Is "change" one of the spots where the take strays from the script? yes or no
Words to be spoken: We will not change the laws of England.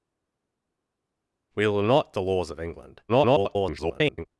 yes